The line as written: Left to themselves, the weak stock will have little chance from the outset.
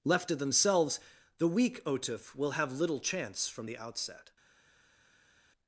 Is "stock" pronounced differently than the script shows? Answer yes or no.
yes